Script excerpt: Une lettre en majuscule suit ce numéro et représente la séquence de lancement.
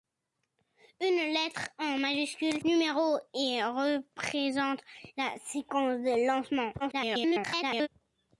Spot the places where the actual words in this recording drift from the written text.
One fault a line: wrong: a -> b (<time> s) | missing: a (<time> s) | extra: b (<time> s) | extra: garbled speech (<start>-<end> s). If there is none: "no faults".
missing: suit ce (2.6 s)
extra: garbled speech (6.8-7.9 s)